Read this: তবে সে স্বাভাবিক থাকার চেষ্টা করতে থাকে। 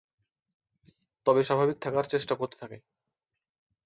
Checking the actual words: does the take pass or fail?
fail